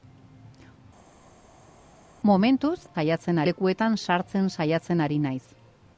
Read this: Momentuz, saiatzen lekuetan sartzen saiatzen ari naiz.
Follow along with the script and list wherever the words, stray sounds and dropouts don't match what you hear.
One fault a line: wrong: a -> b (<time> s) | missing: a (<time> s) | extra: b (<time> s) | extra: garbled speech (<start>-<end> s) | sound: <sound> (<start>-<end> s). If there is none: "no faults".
no faults